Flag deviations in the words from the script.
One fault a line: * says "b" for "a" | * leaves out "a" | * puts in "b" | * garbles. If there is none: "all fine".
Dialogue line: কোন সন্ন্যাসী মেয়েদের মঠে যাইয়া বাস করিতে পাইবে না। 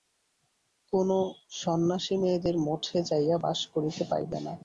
all fine